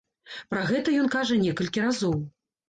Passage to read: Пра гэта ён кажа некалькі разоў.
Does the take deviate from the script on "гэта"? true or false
false